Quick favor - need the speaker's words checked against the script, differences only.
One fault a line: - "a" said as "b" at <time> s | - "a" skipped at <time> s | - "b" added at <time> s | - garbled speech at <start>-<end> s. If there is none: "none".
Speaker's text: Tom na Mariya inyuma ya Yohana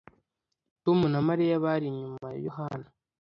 - "bari" added at 1.7 s